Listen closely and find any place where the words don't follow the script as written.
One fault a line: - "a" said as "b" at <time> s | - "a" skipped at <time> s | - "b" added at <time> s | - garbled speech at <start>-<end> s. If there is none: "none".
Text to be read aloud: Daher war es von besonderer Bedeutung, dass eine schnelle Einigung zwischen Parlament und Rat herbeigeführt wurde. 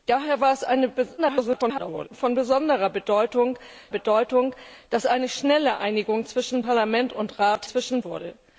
- garbled speech at 1.2-2.1 s
- "Bedeutung" added at 3.9 s
- "herbeigeführt" said as "zwischen" at 7.6 s